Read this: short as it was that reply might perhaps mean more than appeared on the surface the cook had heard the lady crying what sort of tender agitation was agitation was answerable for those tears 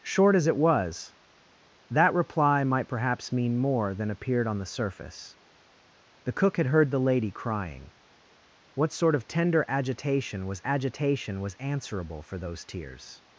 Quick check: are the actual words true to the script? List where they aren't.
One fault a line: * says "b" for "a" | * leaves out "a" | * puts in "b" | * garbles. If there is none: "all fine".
all fine